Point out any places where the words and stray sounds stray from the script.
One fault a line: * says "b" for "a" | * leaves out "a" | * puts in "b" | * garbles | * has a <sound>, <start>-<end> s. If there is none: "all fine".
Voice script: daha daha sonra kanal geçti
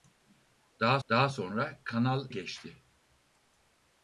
all fine